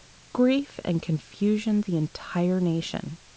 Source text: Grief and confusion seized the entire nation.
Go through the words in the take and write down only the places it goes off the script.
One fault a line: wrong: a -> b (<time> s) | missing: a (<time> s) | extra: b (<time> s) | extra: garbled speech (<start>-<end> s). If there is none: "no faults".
missing: seized (1.8 s)